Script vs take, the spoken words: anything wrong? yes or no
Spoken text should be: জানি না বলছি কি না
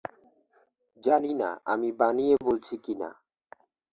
yes